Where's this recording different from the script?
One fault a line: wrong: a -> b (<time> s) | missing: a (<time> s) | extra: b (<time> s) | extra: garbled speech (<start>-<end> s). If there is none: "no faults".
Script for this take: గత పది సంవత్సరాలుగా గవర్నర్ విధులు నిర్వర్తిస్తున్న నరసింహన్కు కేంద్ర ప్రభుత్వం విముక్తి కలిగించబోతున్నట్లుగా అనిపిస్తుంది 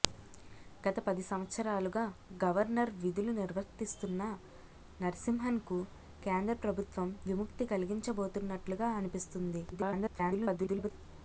extra: garbled speech (9.7-10.9 s)